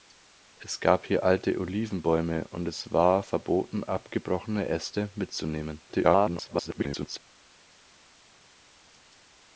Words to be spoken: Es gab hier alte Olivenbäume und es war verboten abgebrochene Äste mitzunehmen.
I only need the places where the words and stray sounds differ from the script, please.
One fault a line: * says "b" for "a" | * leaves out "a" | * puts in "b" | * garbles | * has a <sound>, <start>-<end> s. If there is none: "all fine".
* garbles